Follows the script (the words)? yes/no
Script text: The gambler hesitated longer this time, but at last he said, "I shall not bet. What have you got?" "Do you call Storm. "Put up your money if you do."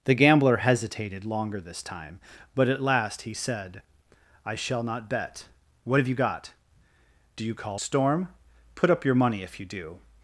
yes